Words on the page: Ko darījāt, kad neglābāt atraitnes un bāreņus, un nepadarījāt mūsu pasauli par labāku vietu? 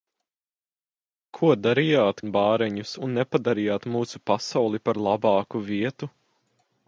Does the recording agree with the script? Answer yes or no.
no